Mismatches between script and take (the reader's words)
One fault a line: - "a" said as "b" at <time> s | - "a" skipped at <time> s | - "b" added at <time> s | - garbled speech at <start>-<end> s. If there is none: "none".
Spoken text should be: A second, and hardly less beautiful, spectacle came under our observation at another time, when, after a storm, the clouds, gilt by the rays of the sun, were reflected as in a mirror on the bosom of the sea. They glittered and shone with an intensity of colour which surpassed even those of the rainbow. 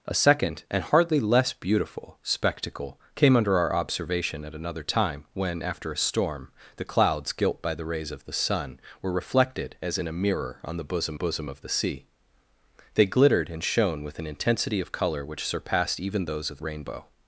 - "bosom" added at 11.1 s
- "the" skipped at 16.6 s